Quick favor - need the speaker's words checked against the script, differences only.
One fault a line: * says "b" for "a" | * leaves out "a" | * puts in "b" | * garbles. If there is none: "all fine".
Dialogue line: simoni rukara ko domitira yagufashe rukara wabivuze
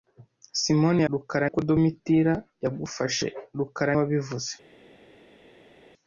all fine